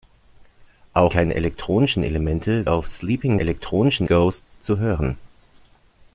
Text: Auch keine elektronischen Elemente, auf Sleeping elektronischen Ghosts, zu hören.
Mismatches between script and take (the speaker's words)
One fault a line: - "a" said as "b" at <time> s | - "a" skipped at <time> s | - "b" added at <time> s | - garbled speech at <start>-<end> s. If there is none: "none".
none